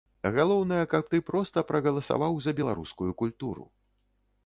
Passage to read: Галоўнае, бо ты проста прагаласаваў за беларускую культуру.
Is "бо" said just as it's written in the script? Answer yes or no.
no